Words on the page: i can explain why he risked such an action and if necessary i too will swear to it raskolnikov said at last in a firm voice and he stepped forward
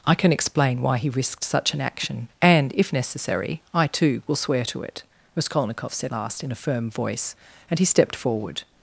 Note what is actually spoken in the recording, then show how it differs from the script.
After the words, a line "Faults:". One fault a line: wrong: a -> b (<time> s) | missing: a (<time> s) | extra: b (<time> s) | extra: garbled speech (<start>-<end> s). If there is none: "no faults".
i can explain why he risked such an action and if necessary i too will swear to it raskolnikov said last in a firm voice and he stepped forward
Faults:
missing: at (6.1 s)